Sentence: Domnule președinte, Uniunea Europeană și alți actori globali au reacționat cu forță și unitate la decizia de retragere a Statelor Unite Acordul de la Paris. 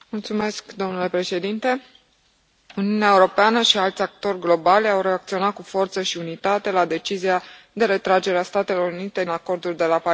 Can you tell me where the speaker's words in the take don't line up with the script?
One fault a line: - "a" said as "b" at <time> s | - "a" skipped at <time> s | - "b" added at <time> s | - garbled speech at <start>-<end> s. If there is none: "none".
none